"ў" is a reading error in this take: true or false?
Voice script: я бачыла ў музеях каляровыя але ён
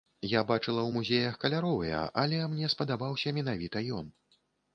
false